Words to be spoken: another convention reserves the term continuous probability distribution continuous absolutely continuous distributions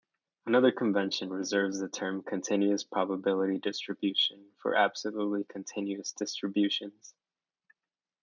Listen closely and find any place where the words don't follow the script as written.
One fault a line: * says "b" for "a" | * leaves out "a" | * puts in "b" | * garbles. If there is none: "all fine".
* says "for" for "continuous"